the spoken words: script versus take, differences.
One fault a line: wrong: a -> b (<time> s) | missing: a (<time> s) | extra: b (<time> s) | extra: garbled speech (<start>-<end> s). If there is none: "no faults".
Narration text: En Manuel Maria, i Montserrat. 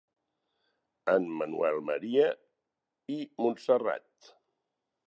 no faults